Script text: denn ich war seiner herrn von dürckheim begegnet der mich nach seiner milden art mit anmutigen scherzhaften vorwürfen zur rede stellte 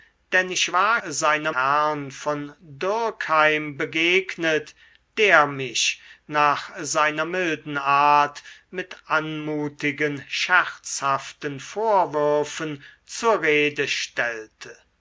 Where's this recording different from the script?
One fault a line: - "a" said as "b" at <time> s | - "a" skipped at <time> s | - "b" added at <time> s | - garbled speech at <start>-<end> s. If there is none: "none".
none